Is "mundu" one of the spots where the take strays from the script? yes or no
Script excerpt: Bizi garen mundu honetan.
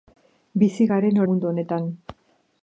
no